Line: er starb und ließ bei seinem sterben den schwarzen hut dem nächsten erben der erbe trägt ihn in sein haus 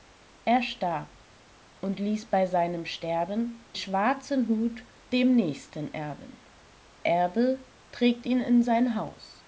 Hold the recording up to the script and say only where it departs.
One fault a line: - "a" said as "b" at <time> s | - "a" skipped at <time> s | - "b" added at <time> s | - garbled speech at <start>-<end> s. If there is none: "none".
- "den" skipped at 3.7 s
- "der" skipped at 6.4 s